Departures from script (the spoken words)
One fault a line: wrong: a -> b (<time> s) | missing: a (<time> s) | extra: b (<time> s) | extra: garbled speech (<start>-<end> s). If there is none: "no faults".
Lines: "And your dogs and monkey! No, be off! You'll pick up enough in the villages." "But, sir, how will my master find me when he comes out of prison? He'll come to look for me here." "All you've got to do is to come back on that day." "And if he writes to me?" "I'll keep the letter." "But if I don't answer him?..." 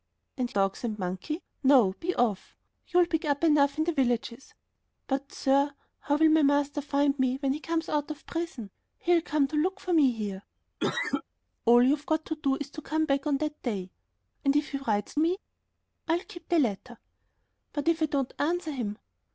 missing: your (0.5 s)
missing: to (15.1 s)